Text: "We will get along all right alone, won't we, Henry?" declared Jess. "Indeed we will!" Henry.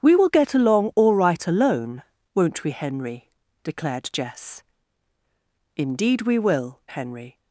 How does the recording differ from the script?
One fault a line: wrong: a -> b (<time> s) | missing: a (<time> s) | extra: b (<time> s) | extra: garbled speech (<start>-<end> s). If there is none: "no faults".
no faults